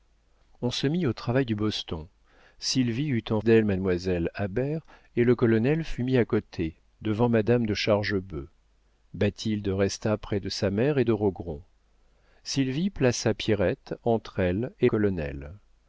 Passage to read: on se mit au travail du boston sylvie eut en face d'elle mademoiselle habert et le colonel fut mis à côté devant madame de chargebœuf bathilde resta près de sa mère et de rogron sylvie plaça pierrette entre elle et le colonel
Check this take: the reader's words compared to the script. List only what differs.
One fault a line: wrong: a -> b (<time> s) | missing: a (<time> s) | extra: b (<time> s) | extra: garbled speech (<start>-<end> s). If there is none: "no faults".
missing: face (3.4 s)
missing: le (14.9 s)